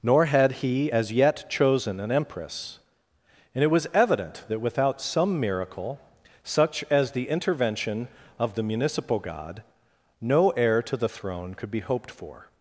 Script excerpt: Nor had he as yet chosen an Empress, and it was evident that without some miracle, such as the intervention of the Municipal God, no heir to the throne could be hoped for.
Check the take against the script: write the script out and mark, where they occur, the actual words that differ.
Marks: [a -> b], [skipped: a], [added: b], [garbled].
Nor had he as yet chosen an Empress, and it was evident that without some miracle, such as the intervention of the Municipal God, no heir to the throne could be hoped for.